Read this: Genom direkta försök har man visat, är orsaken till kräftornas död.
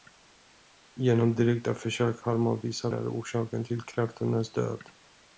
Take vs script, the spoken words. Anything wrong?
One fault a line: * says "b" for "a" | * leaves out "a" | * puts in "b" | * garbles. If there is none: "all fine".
all fine